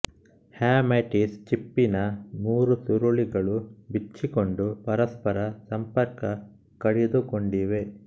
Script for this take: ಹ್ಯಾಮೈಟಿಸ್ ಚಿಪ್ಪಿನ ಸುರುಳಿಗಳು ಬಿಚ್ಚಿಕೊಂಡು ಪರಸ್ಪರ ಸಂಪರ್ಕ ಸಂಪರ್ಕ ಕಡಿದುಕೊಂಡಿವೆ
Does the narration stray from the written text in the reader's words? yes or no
yes